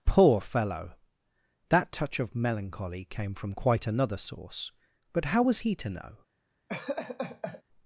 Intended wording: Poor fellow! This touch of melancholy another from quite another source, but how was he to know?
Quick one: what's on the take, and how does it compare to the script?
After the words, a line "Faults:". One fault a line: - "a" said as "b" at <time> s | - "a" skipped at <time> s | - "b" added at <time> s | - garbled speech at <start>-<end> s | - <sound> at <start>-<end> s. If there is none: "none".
Poor fellow! That touch of melancholy came from quite another source, but how was he to know?
Faults:
- "This" said as "That" at 1.7 s
- "another" said as "came" at 3.0 s
- laugh at 6.7-7.6 s